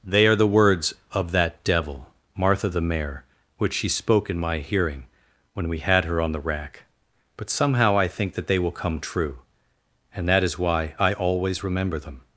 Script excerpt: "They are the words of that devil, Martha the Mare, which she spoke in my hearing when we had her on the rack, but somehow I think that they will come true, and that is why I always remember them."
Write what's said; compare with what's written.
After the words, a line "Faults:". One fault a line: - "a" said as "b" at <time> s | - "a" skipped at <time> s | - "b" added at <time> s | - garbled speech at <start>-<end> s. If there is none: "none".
"They are the words of that devil, Martha the Mare, which she spoke in my hearing when we had her on the rack, but somehow I think that they will come true, and that is why I always remember them."
Faults:
none